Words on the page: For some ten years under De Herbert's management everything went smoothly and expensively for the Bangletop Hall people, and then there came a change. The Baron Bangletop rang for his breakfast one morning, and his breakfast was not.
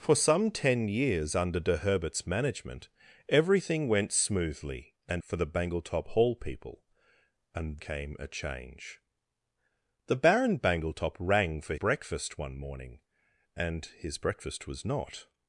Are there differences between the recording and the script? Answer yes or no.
yes